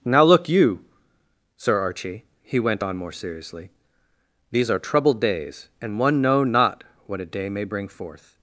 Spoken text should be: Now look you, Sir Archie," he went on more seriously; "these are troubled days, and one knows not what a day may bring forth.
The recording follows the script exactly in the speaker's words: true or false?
false